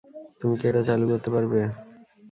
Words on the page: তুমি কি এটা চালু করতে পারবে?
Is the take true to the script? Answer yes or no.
yes